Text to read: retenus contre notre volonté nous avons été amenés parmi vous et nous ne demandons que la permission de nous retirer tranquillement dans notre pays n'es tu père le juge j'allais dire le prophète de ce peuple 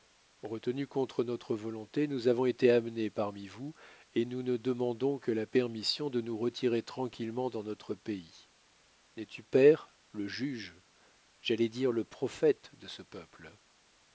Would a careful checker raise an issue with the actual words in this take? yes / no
no